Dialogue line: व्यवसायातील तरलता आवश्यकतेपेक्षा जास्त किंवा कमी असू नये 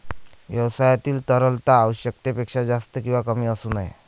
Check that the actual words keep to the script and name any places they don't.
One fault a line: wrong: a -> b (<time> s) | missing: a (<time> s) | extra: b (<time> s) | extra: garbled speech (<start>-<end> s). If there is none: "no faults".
no faults